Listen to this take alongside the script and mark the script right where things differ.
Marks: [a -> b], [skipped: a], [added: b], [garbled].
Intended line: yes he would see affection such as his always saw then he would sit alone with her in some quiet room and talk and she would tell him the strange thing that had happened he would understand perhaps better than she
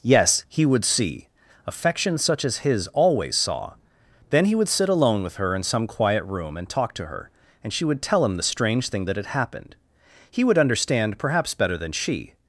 yes he would see affection such as his always saw then he would sit alone with her in some quiet room and talk [added: to her] and she would tell him the strange thing that had happened he would understand perhaps better than she